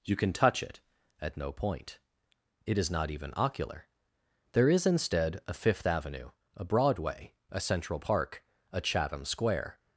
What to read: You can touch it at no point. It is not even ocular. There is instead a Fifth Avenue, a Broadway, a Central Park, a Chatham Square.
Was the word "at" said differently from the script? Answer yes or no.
no